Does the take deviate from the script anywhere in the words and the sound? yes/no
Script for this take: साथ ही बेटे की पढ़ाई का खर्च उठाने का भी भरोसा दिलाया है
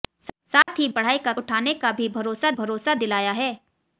yes